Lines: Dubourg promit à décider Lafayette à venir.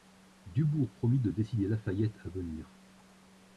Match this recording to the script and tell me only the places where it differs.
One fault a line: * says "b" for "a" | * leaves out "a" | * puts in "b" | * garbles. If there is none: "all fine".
* says "de" for "à"